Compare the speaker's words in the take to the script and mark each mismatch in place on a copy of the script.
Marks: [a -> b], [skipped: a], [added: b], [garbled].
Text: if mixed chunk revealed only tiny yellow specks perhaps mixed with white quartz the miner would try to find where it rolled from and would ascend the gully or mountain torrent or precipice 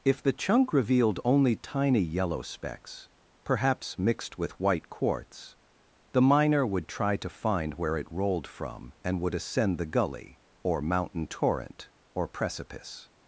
if [mixed -> the] chunk revealed only tiny yellow specks perhaps mixed with white quartz the miner would try to find where it rolled from and would ascend the gully or mountain torrent or precipice